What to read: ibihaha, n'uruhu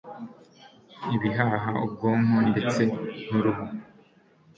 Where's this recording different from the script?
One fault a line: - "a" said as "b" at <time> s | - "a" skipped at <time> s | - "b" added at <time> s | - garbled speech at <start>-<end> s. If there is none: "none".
- "ubwonko ndetse" added at 1.9 s